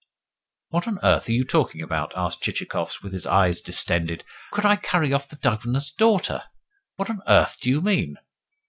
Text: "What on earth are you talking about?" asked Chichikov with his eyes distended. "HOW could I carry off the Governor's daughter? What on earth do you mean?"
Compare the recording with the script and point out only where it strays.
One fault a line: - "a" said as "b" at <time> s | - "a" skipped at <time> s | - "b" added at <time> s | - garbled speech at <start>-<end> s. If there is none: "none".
- "HOW" skipped at 4.2 s